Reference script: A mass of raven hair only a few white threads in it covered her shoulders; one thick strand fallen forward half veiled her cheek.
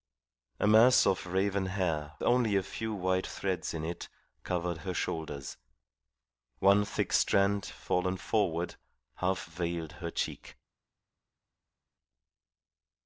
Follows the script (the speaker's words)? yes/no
yes